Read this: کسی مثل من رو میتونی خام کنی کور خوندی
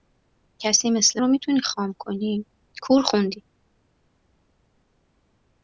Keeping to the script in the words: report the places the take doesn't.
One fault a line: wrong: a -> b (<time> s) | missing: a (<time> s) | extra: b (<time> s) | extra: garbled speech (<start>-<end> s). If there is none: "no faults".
missing: من (1.2 s)